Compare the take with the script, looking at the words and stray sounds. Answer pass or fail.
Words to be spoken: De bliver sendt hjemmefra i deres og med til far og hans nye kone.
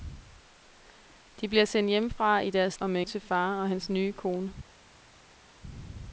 pass